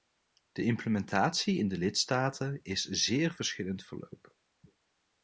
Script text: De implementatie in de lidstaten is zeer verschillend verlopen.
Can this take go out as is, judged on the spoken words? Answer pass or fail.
pass